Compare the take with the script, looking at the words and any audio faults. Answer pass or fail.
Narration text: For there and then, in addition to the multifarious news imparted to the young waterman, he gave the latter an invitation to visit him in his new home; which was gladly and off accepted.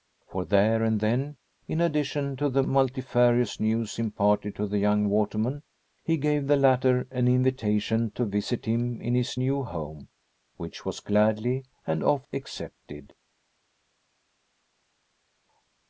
pass